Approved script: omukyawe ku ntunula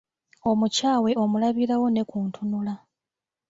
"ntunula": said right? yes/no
yes